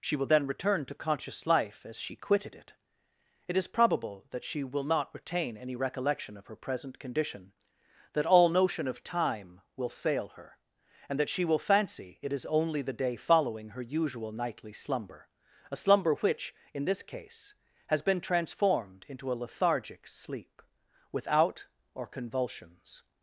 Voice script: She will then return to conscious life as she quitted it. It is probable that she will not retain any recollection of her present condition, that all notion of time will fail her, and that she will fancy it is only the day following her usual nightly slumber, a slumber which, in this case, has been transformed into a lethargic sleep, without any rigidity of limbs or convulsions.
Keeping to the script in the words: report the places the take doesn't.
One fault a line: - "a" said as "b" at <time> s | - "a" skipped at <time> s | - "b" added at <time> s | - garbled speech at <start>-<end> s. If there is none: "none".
- "any rigidity of limbs" skipped at 21.7 s